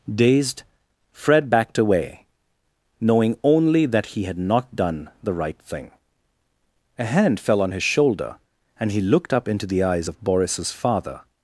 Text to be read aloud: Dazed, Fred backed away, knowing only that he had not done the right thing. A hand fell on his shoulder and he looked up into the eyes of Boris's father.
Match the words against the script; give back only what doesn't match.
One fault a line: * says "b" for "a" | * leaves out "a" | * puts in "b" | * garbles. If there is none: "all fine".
all fine